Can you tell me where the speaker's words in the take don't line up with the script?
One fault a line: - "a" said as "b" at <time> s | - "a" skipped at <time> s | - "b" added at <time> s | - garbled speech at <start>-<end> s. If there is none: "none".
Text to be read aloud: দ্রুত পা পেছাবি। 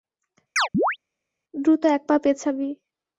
- "এক" added at 1.9 s